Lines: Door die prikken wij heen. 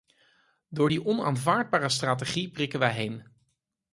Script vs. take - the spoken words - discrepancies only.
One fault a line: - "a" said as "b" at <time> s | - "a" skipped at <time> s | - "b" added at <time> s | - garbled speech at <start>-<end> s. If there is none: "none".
- "onaanvaardbare strategie" added at 1.1 s